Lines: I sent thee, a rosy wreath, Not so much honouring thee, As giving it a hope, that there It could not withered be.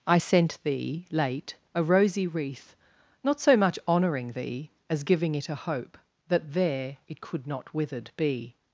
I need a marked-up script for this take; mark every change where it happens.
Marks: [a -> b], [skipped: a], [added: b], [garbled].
I sent thee, [added: late] a rosy wreath, Not so much honouring thee, As giving it a hope, that there It could not withered be.